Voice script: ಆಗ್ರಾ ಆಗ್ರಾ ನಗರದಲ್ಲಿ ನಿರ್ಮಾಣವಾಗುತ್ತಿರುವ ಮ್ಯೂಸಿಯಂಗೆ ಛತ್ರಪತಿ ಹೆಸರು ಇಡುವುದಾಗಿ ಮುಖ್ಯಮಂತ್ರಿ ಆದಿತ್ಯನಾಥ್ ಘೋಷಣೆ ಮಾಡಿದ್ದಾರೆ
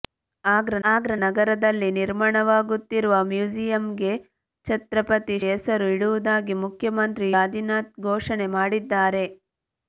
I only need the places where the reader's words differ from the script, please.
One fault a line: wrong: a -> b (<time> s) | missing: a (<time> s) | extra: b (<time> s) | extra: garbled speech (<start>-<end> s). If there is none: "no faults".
no faults